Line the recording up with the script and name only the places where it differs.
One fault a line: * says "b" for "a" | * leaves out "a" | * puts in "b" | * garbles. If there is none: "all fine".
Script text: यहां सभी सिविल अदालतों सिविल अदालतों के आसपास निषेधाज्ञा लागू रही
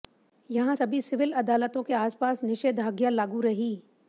* leaves out "सिविल अदालतों"